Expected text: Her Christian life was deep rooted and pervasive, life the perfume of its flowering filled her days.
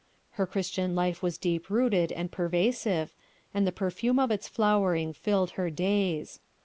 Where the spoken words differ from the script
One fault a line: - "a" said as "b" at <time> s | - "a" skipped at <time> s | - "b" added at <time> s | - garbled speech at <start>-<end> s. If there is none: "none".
- "life" said as "and" at 3.5 s